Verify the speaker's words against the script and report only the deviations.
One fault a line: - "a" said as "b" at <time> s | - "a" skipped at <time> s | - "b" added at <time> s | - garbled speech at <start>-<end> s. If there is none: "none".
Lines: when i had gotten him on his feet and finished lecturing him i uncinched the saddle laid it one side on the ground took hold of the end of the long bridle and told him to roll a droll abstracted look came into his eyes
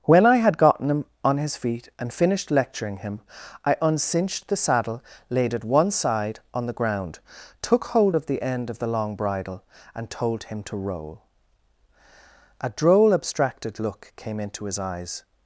none